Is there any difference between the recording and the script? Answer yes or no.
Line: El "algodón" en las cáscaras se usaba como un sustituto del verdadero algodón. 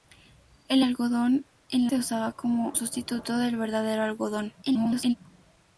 yes